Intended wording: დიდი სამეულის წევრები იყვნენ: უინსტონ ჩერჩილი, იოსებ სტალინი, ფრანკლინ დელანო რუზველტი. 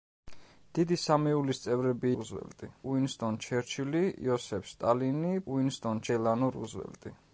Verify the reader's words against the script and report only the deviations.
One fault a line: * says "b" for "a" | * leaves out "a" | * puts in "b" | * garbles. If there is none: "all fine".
* says "რუზველტი" for "იყვნენ"
* says "უინსტონ" for "ფრანკლინ"